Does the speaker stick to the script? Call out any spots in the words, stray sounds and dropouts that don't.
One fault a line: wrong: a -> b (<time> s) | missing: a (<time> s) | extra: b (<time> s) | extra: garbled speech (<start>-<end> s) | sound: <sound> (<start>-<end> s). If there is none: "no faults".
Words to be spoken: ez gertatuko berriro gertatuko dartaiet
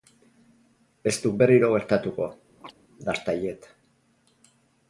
wrong: gertatuko -> duk (1.2 s)
sound: chirp (2.6-2.7 s)